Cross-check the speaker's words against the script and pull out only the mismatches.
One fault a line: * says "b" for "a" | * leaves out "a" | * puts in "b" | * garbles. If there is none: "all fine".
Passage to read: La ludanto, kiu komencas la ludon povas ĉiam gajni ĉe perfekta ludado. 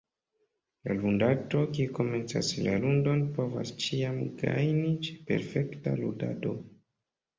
all fine